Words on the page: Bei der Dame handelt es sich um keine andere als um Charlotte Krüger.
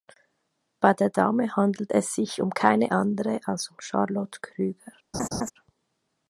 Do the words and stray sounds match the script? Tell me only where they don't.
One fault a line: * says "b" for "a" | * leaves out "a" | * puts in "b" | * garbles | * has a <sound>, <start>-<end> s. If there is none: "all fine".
* has a laugh, 5.1-5.5 s